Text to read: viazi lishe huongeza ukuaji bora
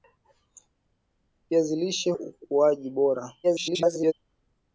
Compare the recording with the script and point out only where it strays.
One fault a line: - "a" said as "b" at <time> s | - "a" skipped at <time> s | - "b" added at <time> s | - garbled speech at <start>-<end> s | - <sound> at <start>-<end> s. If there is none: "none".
- "huongeza" skipped at 2.1 s
- garbled speech at 3.4-4.1 s